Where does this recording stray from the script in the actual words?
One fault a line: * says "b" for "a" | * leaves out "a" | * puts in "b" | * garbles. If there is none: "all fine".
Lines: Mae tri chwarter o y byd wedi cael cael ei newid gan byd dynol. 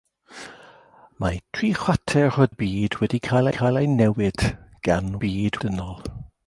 all fine